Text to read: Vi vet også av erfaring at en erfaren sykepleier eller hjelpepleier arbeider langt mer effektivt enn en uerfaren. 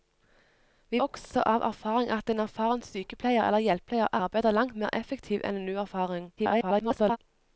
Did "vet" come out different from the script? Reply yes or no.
yes